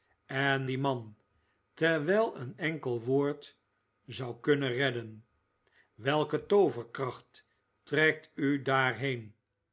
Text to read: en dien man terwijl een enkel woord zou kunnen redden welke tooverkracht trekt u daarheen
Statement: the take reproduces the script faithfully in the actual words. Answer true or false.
true